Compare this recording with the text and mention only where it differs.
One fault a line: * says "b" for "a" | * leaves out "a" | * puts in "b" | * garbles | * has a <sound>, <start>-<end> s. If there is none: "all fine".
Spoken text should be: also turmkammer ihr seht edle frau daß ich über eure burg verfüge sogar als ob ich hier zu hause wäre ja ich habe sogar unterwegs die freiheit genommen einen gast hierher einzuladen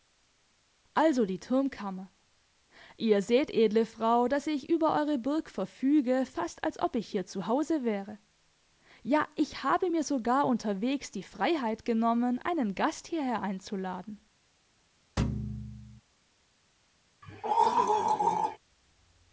* puts in "die"
* says "fast" for "sogar"
* puts in "mir"
* has a thud, 15.2-16.0 s
* has a throat clearing, 17.2-18.6 s